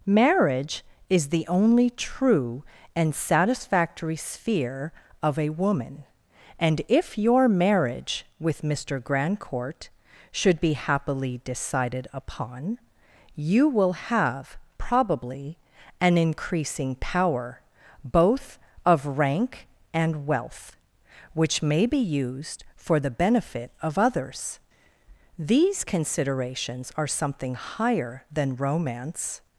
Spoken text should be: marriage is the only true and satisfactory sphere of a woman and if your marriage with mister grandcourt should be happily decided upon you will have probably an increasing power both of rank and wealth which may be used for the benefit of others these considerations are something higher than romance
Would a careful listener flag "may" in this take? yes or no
no